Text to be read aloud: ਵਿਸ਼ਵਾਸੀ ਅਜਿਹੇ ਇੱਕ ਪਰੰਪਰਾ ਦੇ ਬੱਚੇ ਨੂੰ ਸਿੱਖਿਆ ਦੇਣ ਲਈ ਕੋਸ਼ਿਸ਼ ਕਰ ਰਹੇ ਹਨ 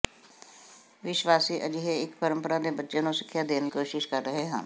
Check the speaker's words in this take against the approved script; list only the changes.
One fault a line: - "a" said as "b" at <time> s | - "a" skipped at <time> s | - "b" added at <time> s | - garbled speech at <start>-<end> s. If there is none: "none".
- "ਲਈ" skipped at 3.7 s